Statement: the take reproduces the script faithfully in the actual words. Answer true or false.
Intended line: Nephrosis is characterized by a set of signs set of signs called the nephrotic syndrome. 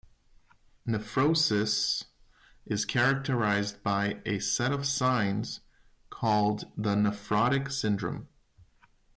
false